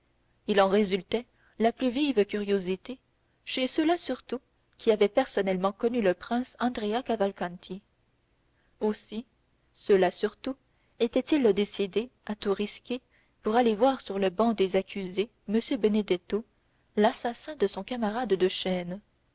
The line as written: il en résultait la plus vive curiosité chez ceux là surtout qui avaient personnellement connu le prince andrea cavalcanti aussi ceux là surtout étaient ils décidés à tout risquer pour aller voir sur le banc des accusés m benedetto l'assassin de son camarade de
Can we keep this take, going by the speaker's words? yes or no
yes